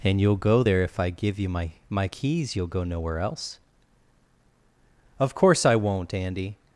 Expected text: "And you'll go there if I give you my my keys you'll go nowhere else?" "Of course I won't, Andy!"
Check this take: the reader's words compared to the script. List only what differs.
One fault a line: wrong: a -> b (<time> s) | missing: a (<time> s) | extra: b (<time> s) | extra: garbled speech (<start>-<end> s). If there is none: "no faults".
no faults